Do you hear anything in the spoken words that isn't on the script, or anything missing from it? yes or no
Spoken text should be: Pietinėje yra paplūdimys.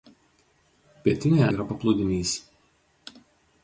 no